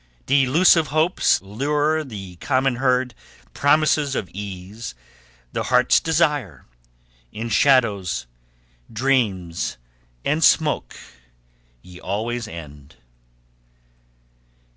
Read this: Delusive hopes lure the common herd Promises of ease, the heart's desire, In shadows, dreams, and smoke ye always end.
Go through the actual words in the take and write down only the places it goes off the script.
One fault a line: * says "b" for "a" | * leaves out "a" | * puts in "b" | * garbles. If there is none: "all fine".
all fine